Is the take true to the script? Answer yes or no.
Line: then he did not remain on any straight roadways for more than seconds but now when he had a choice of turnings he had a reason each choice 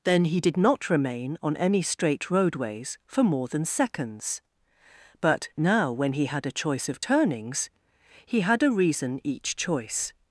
yes